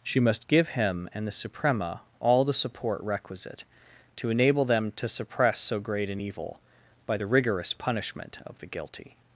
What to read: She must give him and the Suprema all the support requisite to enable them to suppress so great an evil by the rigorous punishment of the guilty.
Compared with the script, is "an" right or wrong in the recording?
right